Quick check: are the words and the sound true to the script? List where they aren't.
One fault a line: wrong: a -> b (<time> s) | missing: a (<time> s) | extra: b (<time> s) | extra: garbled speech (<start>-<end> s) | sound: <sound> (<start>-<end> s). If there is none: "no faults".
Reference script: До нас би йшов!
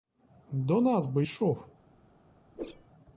sound: whoosh (2.6-2.9 s)